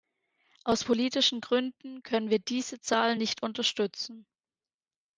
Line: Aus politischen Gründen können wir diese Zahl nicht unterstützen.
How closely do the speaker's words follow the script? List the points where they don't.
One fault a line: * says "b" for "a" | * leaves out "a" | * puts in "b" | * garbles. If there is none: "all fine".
all fine